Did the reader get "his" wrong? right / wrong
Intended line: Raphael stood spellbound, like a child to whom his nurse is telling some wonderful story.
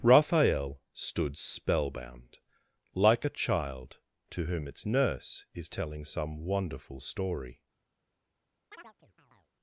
wrong